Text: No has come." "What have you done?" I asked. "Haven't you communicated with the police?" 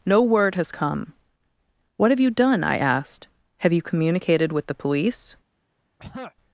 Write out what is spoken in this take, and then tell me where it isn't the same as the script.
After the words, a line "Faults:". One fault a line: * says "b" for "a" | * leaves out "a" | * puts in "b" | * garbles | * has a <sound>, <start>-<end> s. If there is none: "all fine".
No word has come." "What have you done?" I asked. "Have you communicated with the police?"
Faults:
* puts in "word"
* says "Have" for "Haven't"
* has a throat clearing, 6.0-6.3 s